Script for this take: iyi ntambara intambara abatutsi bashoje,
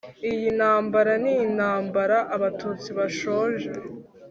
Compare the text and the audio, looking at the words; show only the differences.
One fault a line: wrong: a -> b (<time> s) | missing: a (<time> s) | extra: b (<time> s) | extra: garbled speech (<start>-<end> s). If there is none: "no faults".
extra: ni (1.2 s)